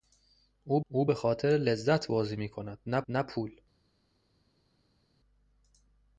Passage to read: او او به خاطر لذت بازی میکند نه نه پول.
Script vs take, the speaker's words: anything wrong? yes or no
no